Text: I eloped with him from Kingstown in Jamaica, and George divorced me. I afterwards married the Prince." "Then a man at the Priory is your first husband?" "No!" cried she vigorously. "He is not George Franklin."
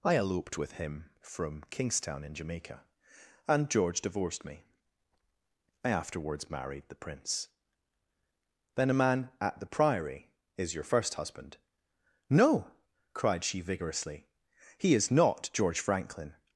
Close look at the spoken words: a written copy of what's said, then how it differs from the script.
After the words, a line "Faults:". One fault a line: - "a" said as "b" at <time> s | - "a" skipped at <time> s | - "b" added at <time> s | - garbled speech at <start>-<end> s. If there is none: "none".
I eloped with him from Kingstown in Jamaica, and George divorced me. I afterwards married the Prince." "Then a man at the Priory is your first husband?" "No!" cried she vigorously. "He is not George Franklin."
Faults:
none